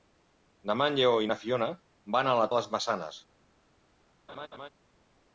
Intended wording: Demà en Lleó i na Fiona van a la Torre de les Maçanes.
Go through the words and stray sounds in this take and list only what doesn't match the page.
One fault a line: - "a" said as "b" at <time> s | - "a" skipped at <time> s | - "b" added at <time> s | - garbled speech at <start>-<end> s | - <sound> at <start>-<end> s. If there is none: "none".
- "Torre" skipped at 2.5 s
- laugh at 4.3-4.7 s